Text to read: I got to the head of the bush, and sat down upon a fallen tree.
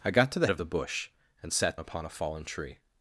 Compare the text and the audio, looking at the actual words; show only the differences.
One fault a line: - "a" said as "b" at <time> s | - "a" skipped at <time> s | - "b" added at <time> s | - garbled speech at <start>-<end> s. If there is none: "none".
- "head" skipped at 0.5 s
- "down" skipped at 1.8 s